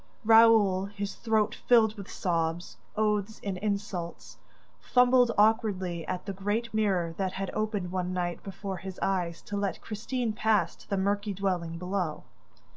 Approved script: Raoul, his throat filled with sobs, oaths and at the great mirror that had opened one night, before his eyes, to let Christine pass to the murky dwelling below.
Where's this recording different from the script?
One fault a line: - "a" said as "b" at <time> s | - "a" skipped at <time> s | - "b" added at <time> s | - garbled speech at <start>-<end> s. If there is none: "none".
- "insults fumbled awkwardly" added at 3.6 s